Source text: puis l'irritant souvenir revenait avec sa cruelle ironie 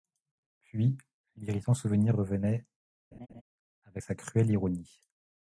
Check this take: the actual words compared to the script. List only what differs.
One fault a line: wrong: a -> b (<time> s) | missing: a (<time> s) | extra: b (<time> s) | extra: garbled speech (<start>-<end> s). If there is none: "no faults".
no faults